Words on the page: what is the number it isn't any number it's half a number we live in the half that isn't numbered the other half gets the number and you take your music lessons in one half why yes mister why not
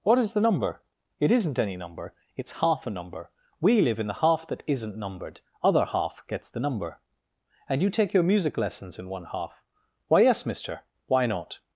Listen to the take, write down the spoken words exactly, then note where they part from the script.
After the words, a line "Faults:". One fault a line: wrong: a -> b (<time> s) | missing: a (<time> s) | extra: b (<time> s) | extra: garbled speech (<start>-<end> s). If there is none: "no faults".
what is the number it isn't any number it's half a number we live in the half that isn't numbered other half gets the number and you take your music lessons in one half why yes mister why not
Faults:
missing: the (5.4 s)